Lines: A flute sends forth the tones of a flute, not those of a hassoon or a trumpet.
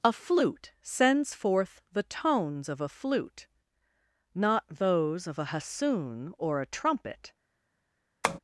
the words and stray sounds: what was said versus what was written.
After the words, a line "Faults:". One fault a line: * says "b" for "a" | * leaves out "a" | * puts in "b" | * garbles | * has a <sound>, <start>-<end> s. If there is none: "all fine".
A flute sends forth the tones of a flute, not those of a hassoon or a trumpet.
Faults:
* has a tap, 8.2-8.4 s